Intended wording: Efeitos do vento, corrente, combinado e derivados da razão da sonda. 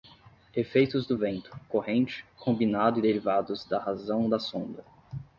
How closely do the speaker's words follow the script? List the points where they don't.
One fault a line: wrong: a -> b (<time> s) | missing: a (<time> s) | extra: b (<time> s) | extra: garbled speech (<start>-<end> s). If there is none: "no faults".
no faults